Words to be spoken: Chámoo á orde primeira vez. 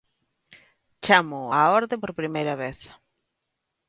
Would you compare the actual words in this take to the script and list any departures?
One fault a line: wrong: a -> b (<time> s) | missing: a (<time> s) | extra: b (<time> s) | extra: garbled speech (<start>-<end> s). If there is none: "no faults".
extra: por (2.0 s)